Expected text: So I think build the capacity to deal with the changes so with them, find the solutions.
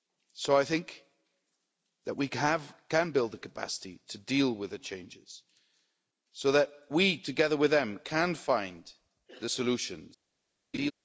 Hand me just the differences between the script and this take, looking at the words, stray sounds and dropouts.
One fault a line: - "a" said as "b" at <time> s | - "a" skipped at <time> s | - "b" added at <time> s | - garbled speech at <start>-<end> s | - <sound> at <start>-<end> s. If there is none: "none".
- "that we can" added at 2.0 s
- "that we together" added at 6.5 s
- "can" added at 8.0 s
- laugh at 10.7-10.9 s